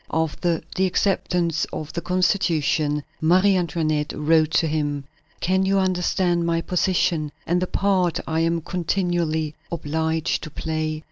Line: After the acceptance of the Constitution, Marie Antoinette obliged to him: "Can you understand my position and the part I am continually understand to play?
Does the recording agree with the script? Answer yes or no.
no